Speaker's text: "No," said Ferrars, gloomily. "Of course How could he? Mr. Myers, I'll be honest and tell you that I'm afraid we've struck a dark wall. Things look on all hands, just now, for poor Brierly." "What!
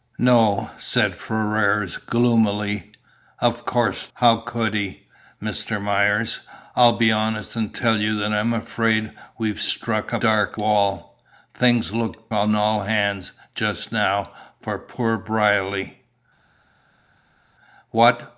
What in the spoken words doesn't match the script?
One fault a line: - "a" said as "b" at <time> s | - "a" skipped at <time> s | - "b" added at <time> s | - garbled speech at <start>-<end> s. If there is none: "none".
none